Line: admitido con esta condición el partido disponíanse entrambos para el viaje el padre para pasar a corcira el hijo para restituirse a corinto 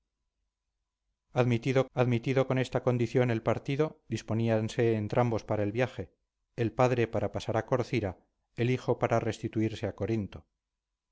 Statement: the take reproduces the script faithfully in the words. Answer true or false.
false